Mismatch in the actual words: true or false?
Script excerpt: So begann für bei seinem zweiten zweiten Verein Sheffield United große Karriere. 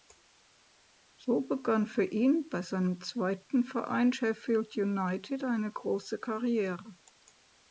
true